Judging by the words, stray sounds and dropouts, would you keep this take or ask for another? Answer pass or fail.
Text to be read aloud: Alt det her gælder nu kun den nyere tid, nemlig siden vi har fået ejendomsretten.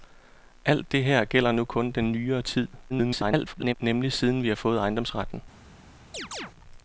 fail